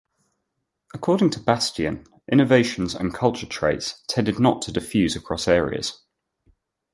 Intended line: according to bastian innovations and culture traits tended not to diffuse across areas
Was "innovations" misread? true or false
false